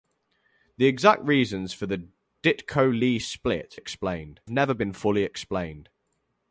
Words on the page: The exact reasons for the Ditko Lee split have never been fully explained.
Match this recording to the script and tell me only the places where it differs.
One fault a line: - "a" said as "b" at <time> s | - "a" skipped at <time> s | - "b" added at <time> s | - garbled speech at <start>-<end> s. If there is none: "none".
- "have" said as "explained" at 3.7 s